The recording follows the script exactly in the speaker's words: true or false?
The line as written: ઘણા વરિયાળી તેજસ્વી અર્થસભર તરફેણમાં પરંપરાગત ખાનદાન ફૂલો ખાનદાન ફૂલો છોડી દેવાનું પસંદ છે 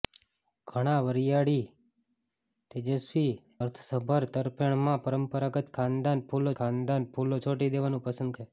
true